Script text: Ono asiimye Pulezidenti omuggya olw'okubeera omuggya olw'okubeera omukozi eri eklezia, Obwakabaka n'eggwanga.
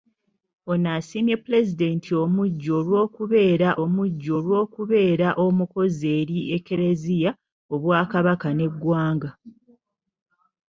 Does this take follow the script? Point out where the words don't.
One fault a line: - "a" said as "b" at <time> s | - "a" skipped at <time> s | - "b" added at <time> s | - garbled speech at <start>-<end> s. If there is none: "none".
none